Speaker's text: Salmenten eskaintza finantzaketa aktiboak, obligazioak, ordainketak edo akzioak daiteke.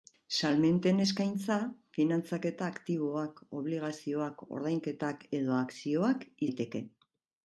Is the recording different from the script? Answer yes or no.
no